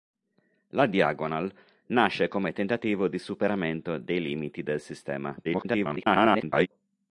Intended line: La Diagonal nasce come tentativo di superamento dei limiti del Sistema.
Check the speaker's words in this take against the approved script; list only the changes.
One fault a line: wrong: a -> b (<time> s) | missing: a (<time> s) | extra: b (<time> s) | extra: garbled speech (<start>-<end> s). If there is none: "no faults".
extra: garbled speech (5.4-6.7 s)